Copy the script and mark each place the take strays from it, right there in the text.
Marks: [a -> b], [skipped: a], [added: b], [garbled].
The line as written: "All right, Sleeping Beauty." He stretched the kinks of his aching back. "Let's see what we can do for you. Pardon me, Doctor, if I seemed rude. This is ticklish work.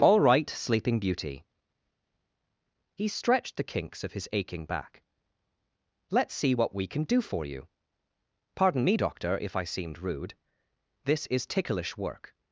"All right, Sleeping Beauty." He stretched the kinks of his aching back. "Let's see what we can do for you. Pardon me, Doctor, if I seemed rude. This is ticklish work.